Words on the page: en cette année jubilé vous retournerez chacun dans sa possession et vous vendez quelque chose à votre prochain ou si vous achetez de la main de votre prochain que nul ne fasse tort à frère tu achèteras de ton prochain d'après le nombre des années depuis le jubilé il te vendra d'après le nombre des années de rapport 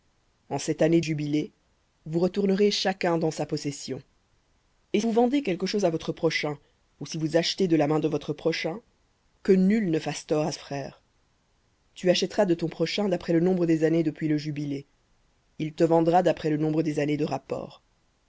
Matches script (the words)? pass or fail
pass